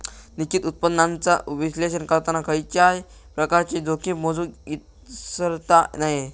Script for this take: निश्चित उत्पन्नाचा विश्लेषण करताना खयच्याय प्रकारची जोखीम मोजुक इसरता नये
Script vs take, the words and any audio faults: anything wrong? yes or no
no